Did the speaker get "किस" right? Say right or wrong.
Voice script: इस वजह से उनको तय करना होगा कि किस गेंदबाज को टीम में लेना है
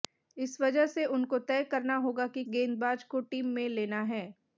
wrong